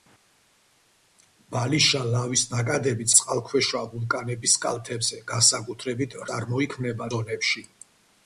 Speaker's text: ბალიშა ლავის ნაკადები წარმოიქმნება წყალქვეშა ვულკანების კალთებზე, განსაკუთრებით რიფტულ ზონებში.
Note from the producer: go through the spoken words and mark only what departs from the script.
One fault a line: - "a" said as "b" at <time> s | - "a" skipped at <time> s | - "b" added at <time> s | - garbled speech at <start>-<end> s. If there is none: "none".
- "წარმოიქმნება" skipped at 3.1 s
- "რიფტულ" said as "წარმოიქმნება" at 6.3 s